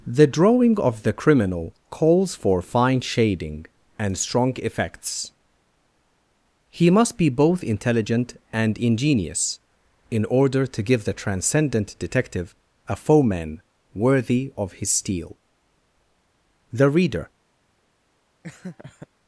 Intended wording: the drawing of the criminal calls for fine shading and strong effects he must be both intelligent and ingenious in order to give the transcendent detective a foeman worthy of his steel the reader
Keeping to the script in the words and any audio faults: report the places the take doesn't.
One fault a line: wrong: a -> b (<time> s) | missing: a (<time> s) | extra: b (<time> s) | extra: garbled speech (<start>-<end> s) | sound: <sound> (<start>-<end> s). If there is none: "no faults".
sound: laugh (18.4-19.1 s)